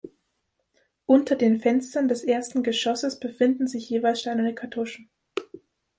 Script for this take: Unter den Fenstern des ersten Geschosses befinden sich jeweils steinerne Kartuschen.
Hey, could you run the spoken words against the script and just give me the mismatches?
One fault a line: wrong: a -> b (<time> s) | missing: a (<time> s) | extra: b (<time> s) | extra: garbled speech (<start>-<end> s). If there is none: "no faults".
no faults